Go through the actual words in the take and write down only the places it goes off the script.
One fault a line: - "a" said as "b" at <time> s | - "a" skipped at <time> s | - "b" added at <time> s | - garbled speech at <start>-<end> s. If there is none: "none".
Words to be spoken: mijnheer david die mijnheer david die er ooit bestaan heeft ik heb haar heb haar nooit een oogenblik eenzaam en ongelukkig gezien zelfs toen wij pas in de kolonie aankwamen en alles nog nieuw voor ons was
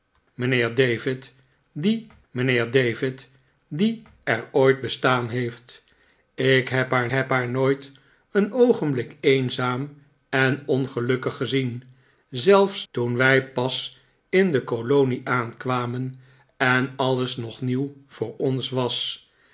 none